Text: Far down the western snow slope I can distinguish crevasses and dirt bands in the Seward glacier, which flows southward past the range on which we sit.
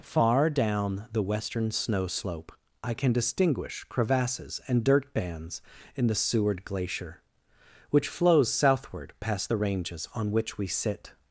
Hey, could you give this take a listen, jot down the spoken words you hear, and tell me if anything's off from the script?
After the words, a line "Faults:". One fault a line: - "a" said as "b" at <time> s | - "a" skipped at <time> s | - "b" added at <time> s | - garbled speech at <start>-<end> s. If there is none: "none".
Far down the western snow slope I can distinguish crevasses and dirt bands in the Seward glacier, which flows southward past the ranges on which we sit.
Faults:
- "range" said as "ranges" at 9.5 s